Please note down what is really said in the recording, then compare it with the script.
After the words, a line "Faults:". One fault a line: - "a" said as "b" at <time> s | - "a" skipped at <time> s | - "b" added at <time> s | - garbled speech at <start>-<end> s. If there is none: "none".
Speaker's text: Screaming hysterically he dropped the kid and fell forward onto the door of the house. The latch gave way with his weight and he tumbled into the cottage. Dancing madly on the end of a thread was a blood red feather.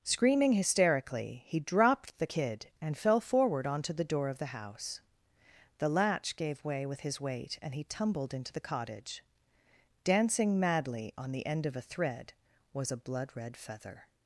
Screaming hysterically he dropped the kid and fell forward onto the door of the house. The latch gave way with his weight and he tumbled into the cottage. Dancing madly on the end of a thread was a blood red feather.
Faults:
none